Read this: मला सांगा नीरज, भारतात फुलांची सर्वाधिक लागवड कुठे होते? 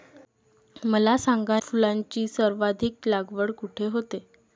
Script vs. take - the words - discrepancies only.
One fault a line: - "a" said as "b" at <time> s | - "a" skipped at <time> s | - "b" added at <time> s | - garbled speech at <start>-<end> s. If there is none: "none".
- "नीरज भारतात" skipped at 1.6 s